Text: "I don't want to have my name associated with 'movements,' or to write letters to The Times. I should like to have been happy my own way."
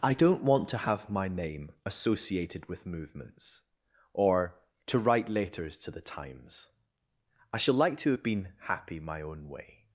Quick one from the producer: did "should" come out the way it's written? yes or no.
no